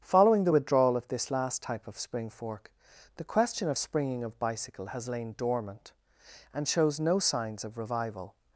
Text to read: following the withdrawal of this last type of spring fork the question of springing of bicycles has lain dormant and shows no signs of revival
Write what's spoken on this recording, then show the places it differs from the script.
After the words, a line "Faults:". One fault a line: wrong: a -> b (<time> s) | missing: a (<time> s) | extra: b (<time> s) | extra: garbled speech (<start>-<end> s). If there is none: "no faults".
following the withdrawal of this last type of spring fork the question of springing of bicycle has lain dormant and shows no signs of revival
Faults:
wrong: bicycles -> bicycle (4.4 s)